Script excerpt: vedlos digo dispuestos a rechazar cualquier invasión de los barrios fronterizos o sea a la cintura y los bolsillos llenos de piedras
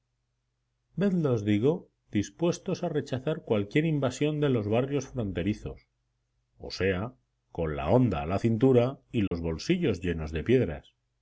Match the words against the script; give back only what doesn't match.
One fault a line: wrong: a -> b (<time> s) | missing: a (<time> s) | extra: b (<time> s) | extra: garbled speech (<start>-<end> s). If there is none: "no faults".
extra: con la honda (7.5 s)